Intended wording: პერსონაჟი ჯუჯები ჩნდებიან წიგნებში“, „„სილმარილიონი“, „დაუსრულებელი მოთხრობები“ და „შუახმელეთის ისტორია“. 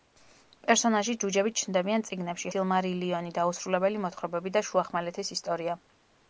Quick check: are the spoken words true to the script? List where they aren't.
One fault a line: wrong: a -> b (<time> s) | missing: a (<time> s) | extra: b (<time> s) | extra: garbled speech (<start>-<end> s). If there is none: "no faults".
no faults